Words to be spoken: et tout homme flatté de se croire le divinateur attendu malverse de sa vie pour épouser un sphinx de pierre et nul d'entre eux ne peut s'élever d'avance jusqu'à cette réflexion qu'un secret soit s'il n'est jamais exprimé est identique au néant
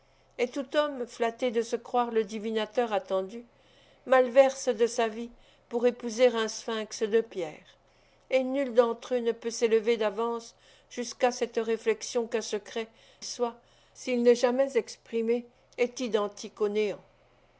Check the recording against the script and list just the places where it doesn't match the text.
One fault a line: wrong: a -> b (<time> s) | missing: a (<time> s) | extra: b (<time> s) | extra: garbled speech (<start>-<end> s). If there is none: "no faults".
no faults